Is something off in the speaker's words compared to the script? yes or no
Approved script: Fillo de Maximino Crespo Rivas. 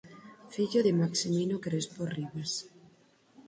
no